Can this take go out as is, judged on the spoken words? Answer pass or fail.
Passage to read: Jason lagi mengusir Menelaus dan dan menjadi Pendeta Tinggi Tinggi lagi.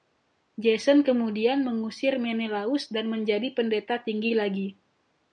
fail